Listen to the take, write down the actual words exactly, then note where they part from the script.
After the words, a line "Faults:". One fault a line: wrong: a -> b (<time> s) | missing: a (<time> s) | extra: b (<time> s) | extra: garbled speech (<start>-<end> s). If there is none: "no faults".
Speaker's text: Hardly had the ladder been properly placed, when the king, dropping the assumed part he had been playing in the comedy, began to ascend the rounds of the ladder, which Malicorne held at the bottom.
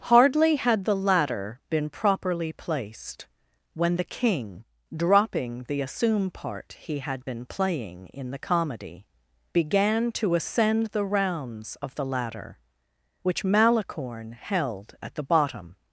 Hardly had the ladder been properly placed, when the king, dropping the assume part he had been playing in the comedy, began to ascend the rounds of the ladder, which Malicorne held at the bottom.
Faults:
wrong: assumed -> assume (5.8 s)